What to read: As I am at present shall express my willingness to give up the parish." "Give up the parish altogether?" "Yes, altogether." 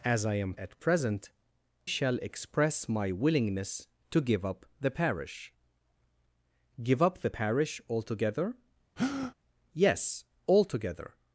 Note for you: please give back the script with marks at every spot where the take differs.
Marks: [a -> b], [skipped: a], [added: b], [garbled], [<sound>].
As I am at present shall express my willingness to give up the parish." "Give up the parish altogether?" [breath] "Yes, altogether."